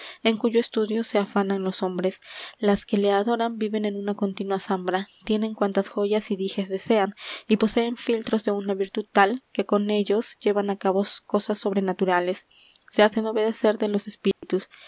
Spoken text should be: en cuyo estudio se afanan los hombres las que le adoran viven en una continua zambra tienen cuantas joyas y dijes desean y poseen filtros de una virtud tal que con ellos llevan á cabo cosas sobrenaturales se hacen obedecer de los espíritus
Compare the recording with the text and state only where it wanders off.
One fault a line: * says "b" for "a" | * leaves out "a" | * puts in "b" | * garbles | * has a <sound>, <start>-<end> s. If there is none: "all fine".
* has a dropout, 14.3-14.4 s